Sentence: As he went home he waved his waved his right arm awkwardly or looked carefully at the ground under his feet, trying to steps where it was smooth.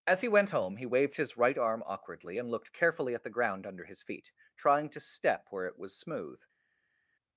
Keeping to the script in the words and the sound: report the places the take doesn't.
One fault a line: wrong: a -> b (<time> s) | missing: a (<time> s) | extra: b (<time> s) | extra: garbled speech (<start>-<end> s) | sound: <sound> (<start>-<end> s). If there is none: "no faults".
missing: waved his (1.4 s)
wrong: or -> and (2.4 s)
wrong: steps -> step (5.0 s)